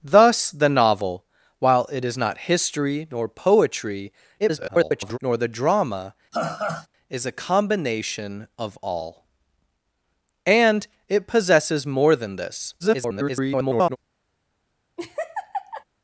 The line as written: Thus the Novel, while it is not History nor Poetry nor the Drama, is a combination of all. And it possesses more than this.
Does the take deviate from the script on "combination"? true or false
false